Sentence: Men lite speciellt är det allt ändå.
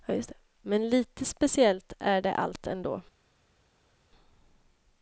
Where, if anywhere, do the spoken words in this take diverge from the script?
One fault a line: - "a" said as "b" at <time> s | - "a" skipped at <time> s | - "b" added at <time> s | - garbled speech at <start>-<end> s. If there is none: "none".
none